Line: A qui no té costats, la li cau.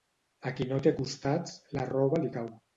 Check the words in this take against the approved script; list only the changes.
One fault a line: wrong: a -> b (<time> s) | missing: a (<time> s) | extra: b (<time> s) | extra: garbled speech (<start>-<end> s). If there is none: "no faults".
extra: roba (1.9 s)